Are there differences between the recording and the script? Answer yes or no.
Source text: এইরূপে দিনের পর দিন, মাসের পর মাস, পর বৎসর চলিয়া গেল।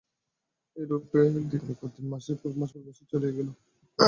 no